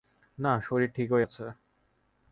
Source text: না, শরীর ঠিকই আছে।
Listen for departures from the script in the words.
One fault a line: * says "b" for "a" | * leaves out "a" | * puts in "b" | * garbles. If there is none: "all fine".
all fine